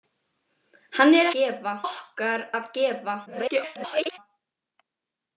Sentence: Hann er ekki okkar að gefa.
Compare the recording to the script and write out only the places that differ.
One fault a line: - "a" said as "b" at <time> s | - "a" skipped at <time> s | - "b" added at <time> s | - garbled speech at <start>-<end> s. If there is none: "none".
- "ekki" said as "gefa" at 1.4 s
- garbled speech at 3.3-4.2 s